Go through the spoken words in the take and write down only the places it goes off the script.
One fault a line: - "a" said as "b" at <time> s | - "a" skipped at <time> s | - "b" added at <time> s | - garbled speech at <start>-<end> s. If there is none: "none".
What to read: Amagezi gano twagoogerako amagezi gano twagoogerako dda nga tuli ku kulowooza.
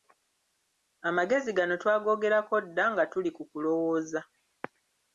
- "amagezi gano twagoogerako" skipped at 2.5 s